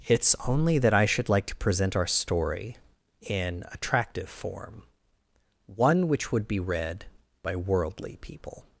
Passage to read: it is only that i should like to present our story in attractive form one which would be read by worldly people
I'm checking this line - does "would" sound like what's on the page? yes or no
yes